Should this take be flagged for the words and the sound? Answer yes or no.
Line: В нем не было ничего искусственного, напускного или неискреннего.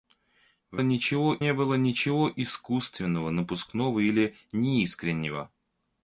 yes